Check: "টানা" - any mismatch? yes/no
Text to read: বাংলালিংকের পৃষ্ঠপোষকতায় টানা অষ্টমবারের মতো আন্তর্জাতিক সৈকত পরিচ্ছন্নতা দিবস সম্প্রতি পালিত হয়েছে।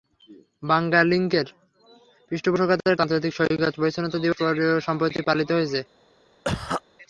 yes